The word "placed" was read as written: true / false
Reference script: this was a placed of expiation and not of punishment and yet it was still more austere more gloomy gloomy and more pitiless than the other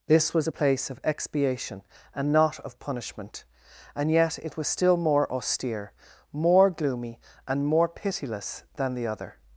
false